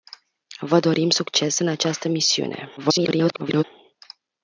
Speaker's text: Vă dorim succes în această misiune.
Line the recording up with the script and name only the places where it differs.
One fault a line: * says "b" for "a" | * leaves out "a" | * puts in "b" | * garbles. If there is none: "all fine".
* garbles